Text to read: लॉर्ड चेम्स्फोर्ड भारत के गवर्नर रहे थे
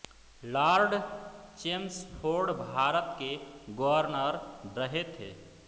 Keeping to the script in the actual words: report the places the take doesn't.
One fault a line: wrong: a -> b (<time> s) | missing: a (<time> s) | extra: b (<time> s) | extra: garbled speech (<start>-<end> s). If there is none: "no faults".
no faults